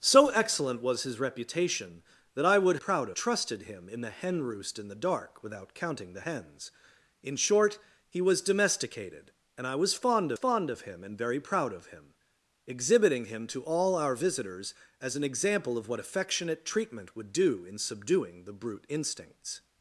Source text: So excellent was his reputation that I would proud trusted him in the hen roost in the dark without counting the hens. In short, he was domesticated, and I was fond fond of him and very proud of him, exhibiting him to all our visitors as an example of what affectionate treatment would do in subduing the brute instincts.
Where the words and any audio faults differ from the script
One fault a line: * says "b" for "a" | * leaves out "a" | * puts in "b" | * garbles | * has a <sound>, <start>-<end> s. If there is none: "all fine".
all fine